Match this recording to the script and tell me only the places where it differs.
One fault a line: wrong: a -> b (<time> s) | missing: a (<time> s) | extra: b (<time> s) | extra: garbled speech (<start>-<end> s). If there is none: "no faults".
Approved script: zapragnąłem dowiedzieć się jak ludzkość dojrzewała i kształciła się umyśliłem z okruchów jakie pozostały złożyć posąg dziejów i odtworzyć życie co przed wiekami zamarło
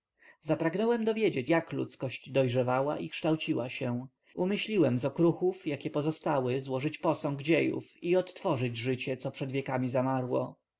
missing: się (1.5 s)